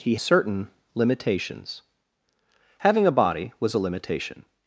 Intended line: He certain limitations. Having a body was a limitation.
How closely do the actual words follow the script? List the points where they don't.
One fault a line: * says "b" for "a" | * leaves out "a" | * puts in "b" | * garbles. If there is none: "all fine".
all fine